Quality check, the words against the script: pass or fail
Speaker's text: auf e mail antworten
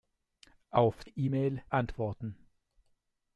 pass